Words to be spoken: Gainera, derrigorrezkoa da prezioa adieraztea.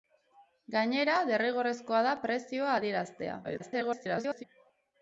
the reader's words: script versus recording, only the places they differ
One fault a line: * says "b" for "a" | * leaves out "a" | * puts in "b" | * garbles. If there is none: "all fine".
* garbles